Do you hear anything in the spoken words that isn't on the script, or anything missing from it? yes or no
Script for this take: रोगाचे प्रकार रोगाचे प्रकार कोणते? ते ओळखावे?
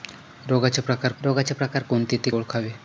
no